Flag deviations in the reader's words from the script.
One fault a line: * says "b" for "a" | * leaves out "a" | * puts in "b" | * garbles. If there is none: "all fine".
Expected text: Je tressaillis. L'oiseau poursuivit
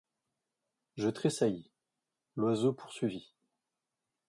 all fine